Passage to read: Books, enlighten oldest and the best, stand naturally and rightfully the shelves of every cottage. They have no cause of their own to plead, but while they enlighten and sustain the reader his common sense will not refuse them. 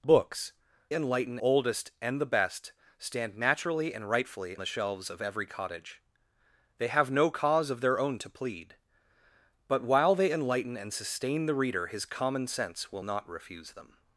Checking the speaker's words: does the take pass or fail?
pass